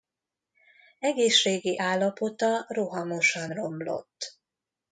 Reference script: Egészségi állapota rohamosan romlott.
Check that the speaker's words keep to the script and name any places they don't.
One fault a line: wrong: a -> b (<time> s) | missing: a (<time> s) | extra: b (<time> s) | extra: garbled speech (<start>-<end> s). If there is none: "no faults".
no faults